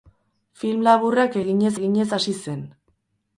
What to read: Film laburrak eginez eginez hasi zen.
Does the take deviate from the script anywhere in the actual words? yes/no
no